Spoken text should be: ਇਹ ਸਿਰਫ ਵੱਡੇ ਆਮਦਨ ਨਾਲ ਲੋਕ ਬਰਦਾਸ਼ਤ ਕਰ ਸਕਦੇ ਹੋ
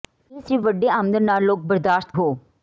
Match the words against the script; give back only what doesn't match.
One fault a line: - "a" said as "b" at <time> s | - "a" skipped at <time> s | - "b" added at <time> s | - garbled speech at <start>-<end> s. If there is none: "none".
- "ਕਰ ਸਕਦੇ" skipped at 2.1 s